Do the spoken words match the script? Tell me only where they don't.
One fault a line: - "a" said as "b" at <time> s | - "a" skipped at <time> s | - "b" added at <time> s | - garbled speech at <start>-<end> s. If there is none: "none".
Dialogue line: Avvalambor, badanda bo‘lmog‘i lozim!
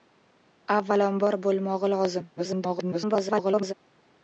- "badanda" skipped at 1.4 s
- garbled speech at 2.4-3.7 s